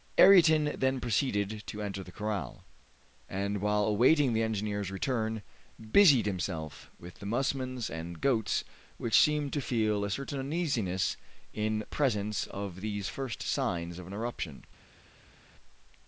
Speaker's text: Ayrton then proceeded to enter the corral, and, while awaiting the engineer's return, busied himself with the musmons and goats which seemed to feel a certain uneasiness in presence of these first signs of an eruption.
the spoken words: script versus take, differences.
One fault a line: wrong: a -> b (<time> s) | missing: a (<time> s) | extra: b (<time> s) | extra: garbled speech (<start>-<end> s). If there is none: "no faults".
no faults